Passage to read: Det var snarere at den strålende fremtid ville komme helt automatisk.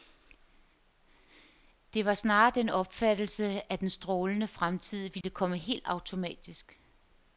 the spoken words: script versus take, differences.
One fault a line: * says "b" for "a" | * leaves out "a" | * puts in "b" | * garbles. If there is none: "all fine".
* puts in "den opfattelse"